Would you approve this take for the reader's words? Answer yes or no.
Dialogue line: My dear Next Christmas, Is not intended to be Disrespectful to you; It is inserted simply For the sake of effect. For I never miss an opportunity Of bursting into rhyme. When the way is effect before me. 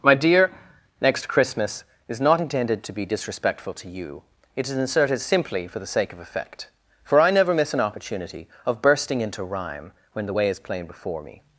no